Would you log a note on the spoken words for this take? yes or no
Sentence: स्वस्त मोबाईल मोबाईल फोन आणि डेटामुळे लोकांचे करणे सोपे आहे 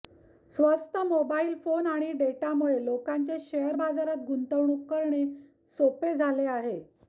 yes